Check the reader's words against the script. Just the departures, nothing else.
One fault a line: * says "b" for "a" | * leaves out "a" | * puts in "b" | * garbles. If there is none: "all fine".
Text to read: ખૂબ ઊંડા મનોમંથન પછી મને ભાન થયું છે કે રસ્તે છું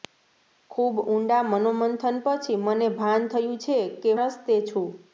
all fine